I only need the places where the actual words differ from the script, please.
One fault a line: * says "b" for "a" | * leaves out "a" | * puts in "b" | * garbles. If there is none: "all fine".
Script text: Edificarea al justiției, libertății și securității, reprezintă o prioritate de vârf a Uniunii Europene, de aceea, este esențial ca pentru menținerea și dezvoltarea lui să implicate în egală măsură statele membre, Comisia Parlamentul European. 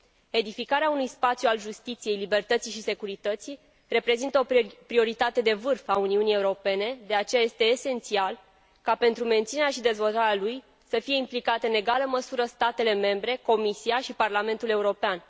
* puts in "unui spațiu"
* puts in "fie"
* puts in "și"